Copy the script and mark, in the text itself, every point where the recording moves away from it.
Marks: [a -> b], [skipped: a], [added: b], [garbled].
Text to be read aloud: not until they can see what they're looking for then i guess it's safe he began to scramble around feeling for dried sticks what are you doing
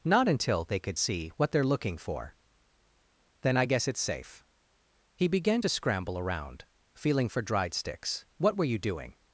not until they [can -> could] see what they're looking for then i guess it's safe he began to scramble around feeling for dried sticks what [are -> were] you doing